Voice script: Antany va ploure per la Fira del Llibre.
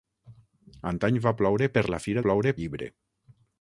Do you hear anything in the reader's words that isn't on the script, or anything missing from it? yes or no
yes